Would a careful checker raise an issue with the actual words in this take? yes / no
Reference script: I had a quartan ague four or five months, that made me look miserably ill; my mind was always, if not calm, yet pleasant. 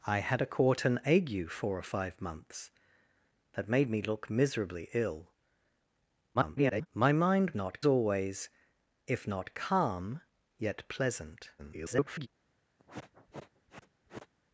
yes